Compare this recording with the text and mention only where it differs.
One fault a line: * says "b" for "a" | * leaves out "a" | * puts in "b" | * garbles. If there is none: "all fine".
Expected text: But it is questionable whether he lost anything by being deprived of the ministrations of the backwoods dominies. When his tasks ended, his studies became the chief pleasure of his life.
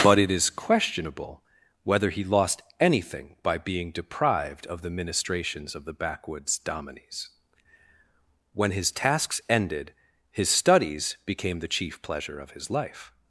all fine